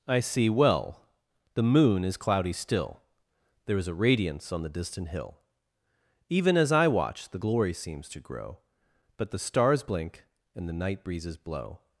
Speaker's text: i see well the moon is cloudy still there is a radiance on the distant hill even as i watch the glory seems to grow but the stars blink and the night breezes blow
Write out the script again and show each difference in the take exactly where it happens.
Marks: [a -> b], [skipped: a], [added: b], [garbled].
i see well the moon is cloudy still there is a radiance on the distant hill even as i watch the glory seems to grow but the stars blink and the night breezes blow